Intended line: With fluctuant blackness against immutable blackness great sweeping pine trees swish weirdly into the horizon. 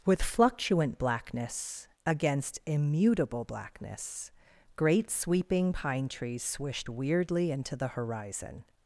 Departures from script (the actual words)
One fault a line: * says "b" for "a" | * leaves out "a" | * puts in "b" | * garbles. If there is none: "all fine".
* says "swished" for "swish"